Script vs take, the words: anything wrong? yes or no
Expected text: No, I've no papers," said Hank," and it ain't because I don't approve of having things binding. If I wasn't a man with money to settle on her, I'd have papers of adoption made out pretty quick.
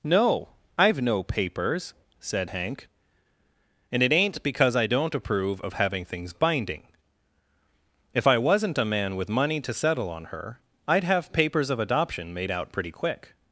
no